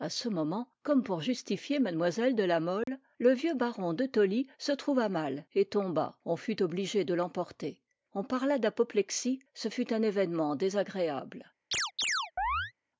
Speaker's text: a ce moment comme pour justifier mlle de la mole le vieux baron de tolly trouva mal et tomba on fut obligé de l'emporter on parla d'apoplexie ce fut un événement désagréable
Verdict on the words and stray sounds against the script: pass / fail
fail